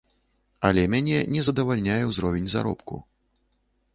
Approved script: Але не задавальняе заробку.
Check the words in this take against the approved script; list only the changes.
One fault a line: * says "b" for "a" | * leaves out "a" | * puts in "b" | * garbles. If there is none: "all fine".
* puts in "мяне"
* puts in "ўзровень"